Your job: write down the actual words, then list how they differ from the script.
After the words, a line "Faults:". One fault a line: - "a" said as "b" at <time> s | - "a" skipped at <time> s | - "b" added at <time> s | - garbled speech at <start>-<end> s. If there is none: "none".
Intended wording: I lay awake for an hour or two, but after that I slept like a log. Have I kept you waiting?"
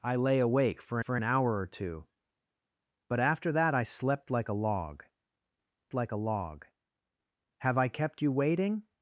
I lay awake for for an hour or two, but after that I slept like a log like a log. Have I kept you waiting?"
Faults:
- "for" added at 1.0 s
- "like a log" added at 5.9 s